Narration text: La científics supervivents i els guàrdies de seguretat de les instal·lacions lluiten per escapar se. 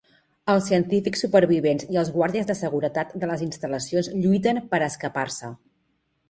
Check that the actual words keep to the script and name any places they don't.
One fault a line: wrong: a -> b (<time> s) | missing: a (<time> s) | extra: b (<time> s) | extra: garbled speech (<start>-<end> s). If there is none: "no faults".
wrong: La -> Els (0.5 s)